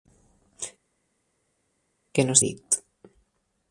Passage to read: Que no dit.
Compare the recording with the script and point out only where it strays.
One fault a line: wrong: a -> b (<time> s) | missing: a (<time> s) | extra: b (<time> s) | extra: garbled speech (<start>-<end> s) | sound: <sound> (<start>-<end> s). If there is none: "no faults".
no faults